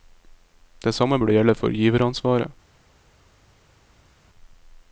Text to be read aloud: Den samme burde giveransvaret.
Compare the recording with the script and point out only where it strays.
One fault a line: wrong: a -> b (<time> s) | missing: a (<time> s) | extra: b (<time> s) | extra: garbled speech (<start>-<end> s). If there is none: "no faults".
wrong: Den -> Det (0.8 s)
extra: gjelde for (1.3 s)